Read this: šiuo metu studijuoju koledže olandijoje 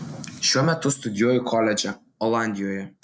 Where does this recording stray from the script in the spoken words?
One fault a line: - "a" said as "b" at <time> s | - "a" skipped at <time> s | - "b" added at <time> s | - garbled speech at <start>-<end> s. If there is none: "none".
none